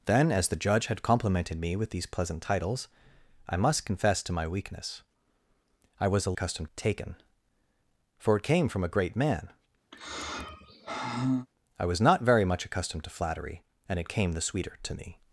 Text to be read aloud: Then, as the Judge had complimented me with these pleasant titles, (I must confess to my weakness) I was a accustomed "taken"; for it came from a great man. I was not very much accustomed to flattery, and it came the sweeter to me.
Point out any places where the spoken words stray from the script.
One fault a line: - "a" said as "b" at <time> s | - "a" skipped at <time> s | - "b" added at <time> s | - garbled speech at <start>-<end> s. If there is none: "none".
none